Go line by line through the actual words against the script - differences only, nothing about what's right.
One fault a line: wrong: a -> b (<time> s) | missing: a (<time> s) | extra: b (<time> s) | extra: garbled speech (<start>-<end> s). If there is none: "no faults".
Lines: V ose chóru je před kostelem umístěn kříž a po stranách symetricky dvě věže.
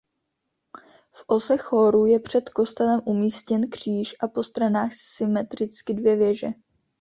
no faults